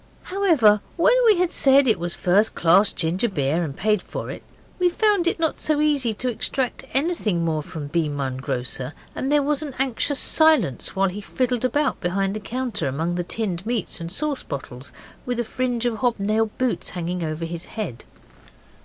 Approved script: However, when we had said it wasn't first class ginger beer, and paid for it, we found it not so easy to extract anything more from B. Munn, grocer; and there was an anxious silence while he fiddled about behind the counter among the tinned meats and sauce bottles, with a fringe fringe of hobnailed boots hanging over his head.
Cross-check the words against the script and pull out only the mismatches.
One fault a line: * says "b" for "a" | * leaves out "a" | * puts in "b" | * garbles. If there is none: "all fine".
* says "was" for "wasn't"
* leaves out "fringe"